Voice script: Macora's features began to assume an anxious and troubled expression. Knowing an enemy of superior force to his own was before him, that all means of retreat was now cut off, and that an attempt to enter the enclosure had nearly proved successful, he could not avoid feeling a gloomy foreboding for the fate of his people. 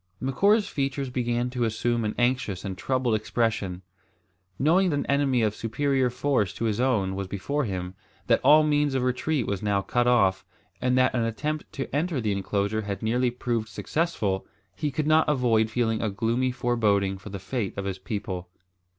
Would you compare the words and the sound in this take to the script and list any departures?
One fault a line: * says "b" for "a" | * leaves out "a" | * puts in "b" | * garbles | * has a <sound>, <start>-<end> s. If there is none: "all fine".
all fine